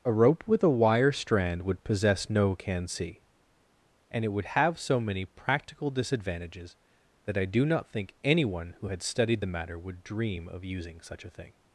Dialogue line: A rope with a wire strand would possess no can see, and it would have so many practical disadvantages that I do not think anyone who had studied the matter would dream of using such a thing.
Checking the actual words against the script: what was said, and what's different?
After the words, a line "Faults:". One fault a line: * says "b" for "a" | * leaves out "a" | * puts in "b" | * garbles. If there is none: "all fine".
A rope with a wire strand would possess no can see, and it would have so many practical disadvantages that I do not think anyone who had studied the matter would dream of using such a thing.
Faults:
all fine